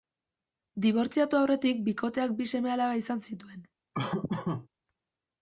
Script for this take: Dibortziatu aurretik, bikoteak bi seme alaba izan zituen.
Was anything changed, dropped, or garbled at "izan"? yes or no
no